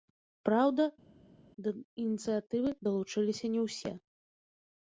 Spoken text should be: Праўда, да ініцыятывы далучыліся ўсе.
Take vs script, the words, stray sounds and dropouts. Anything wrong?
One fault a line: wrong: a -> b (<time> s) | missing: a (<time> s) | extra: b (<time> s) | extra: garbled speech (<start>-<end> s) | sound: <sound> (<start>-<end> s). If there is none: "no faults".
extra: не (3.6 s)